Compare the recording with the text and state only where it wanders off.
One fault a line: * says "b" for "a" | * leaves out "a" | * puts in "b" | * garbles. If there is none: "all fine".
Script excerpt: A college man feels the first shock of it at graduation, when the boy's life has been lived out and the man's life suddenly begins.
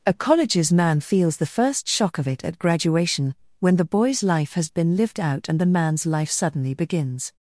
* says "colleges" for "college"